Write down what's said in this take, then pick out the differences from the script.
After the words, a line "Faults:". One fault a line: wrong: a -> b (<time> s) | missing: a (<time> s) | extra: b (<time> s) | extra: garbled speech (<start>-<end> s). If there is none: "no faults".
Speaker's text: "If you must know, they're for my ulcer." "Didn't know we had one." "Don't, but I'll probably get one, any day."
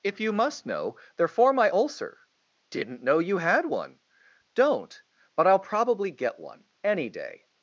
"If you must know, they're for my ulcer." "Didn't know you had one." "Don't, but I'll probably get one, any day."
Faults:
wrong: we -> you (3.2 s)